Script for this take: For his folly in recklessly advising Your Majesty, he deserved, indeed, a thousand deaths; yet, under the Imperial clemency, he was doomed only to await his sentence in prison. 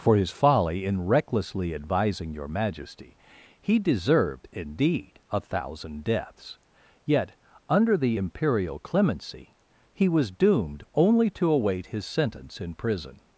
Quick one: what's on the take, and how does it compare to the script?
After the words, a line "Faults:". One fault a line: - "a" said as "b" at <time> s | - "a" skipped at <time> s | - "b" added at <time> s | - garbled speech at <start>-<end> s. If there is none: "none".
For his folly in recklessly advising Your Majesty, he deserved, indeed, a thousand deaths; yet, under the Imperial clemency, he was doomed only to await his sentence in prison.
Faults:
none